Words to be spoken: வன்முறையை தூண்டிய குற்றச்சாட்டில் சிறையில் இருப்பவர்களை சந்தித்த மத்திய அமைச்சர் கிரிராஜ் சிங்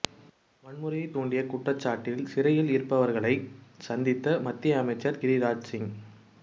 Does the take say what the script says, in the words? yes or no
yes